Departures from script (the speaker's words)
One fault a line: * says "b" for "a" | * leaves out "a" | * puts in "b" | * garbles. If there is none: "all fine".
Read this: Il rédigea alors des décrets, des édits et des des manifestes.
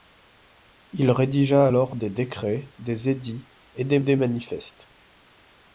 all fine